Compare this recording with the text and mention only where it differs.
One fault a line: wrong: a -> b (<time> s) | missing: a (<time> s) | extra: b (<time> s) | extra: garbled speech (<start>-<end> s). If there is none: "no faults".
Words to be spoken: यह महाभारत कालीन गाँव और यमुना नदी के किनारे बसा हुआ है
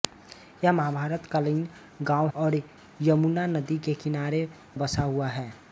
no faults